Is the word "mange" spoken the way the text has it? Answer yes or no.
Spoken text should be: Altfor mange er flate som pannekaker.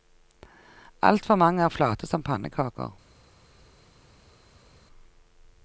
yes